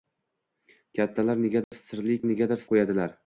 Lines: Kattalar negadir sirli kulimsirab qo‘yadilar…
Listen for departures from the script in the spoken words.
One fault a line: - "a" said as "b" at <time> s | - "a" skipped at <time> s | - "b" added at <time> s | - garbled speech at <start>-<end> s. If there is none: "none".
- "kulimsirab" said as "negadir" at 2.3 s